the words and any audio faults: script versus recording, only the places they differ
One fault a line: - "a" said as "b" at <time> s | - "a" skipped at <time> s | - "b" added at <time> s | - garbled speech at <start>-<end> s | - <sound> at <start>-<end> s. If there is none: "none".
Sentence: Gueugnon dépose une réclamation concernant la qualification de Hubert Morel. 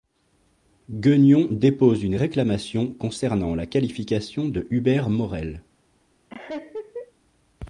- laugh at 6.3-7.1 s